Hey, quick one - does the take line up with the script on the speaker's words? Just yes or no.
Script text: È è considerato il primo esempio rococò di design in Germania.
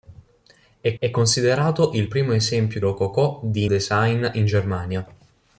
yes